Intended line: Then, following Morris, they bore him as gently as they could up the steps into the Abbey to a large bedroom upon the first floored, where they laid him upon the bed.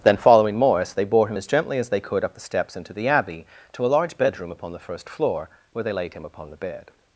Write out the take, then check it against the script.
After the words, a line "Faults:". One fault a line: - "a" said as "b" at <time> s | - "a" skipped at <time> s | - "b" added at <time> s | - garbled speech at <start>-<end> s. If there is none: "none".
Then, following Morris, they bore him as gently as they could up the steps into the Abbey to a large bedroom upon the first floor, where they laid him upon the bed.
Faults:
- "floored" said as "floor" at 5.1 s